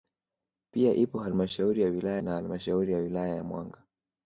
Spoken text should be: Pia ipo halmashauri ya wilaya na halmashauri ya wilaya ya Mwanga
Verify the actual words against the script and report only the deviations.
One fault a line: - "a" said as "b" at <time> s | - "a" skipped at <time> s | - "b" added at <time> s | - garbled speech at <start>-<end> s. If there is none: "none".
none